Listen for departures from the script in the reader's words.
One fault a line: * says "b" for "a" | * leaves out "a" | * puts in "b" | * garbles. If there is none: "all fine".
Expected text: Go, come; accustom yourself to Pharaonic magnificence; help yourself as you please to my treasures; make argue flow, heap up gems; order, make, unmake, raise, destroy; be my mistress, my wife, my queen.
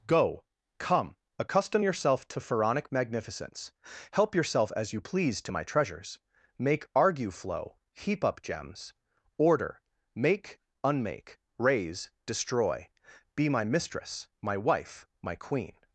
all fine